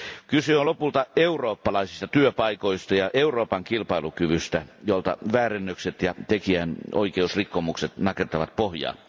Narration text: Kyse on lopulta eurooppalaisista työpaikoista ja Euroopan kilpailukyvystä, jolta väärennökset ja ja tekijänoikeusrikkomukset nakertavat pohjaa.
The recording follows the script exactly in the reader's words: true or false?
false